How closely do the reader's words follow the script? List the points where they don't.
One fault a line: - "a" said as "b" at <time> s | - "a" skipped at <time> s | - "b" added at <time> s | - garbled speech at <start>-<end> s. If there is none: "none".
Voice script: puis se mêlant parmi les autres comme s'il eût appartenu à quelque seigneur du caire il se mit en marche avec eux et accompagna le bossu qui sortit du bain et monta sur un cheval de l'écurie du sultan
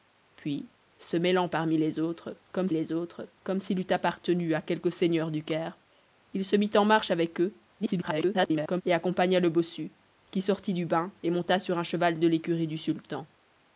- "les autres comme" added at 2.7 s
- garbled speech at 7.8-8.8 s